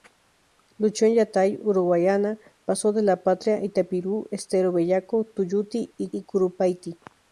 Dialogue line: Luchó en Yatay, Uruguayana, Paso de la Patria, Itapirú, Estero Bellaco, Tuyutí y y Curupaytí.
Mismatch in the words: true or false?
false